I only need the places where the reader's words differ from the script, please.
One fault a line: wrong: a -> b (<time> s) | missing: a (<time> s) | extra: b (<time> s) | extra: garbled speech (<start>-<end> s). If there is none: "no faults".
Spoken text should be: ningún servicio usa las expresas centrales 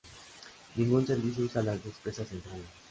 no faults